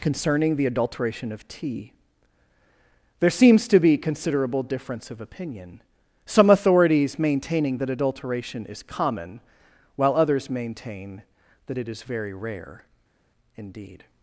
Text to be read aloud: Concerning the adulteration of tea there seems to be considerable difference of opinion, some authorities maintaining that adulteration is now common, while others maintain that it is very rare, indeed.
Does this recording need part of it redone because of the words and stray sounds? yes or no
yes